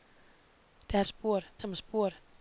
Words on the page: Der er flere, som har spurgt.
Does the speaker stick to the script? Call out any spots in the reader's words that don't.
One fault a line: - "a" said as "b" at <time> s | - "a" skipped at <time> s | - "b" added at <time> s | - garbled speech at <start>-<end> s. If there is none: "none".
- "flere" said as "spurgt" at 1.1 s